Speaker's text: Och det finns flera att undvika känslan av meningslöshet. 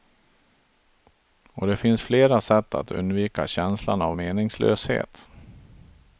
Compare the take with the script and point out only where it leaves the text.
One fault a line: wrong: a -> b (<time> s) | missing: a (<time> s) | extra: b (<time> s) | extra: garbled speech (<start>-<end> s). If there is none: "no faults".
extra: sätt (2.4 s)